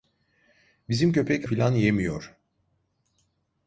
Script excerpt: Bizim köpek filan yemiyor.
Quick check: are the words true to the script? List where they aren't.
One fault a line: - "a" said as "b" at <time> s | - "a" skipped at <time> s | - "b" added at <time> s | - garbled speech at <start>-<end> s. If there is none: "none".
none